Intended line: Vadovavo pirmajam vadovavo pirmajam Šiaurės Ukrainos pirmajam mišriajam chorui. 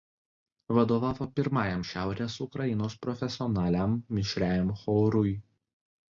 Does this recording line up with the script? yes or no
no